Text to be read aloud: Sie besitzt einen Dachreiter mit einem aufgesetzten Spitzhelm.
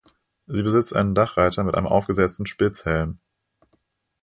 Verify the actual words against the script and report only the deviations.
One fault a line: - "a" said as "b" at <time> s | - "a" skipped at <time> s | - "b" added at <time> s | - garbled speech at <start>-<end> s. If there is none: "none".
none